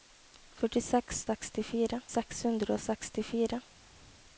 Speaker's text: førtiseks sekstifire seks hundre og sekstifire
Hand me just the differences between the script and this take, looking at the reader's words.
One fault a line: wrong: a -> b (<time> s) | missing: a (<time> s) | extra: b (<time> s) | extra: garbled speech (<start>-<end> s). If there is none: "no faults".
no faults